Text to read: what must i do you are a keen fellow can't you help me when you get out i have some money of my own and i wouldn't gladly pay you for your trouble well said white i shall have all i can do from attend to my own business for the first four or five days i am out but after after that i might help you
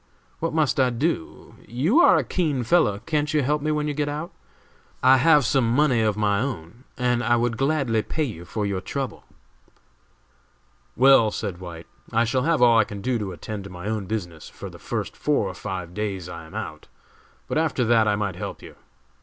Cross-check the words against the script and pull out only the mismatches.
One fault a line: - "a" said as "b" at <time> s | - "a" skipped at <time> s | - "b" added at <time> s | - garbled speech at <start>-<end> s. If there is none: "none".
- "wouldn't" said as "would" at 7.3 s
- "from" said as "to" at 13.2 s
- "after" skipped at 17.8 s